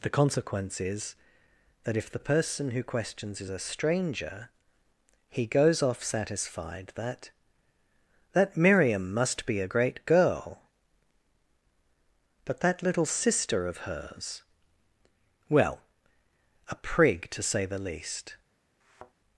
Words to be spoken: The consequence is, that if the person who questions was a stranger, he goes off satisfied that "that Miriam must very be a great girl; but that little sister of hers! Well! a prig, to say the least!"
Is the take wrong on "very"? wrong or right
wrong